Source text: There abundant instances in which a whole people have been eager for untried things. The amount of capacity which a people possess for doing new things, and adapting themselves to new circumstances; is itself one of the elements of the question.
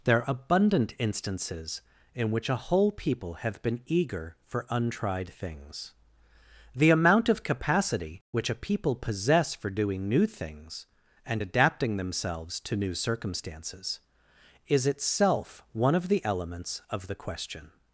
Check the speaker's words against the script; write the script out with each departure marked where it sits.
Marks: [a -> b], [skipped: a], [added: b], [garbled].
There abundant instances in which a whole people have been eager for untried things. The amount of capacity which a people possess for doing new things, and adapting themselves to new circumstances; is itself one of the elements of the question.